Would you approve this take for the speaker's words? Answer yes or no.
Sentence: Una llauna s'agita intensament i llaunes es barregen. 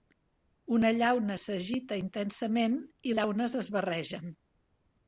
yes